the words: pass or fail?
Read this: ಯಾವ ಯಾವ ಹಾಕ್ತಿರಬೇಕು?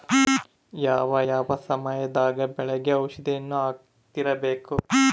fail